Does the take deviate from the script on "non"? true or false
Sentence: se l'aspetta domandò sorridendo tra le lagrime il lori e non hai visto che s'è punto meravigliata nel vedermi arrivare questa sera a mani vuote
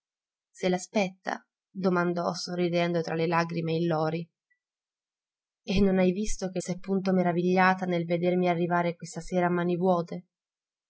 false